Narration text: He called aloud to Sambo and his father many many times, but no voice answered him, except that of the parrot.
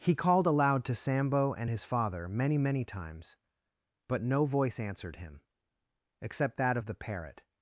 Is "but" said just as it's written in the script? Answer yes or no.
yes